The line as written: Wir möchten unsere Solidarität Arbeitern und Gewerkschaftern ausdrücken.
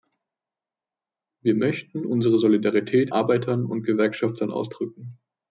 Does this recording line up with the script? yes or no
yes